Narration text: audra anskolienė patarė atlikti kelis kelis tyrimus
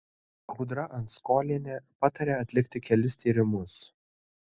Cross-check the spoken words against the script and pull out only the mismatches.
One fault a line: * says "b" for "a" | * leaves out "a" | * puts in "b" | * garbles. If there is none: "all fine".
* leaves out "kelis"